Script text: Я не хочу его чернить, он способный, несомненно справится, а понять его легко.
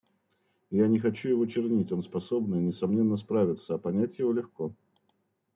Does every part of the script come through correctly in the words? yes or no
yes